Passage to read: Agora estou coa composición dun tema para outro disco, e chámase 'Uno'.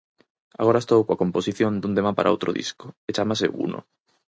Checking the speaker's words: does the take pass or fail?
pass